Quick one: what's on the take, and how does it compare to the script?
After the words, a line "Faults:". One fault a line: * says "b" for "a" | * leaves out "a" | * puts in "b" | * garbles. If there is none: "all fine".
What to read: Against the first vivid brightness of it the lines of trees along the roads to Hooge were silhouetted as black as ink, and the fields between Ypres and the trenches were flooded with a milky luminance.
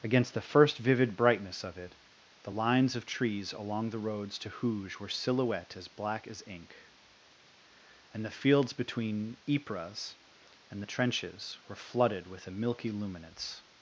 Against the first vivid brightness of it the lines of trees along the roads to Hooge were silhouette as black as ink, and the fields between Ypres and the trenches were flooded with a milky luminance.
Faults:
* says "silhouette" for "silhouetted"